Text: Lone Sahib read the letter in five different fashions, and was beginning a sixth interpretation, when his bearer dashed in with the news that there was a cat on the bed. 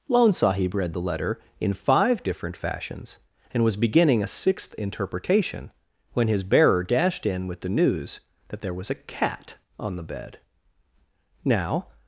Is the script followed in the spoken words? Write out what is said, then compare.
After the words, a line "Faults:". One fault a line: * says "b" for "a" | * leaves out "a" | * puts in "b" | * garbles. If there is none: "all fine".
Lone Sahib read the letter in five different fashions, and was beginning a sixth interpretation, when his bearer dashed in with the news that there was a cat on the bed. Now
Faults:
* puts in "Now"